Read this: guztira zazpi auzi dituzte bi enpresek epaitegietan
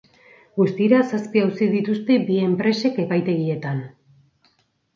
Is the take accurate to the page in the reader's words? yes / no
yes